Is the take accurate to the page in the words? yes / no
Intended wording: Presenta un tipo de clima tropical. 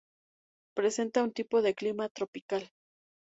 yes